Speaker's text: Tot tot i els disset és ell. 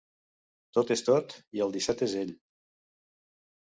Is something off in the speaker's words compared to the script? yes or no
yes